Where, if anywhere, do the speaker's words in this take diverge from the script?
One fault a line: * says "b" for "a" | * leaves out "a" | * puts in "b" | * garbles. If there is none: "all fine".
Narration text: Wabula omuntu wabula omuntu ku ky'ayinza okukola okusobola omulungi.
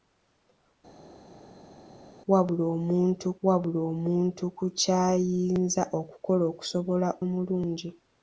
all fine